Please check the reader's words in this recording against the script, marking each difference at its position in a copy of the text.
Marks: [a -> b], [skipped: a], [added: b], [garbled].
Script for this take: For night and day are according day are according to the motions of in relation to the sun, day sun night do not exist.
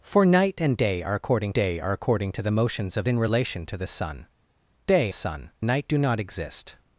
For night and day are according day are according to the motions of in relation to the sun, day sun night do not exist.